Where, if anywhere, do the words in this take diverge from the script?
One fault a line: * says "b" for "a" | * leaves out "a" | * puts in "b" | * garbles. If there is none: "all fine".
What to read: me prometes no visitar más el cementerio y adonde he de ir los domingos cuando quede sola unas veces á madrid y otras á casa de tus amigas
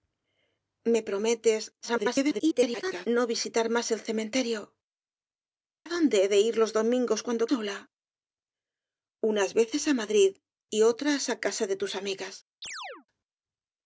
* garbles
* leaves out "y"
* leaves out "quede"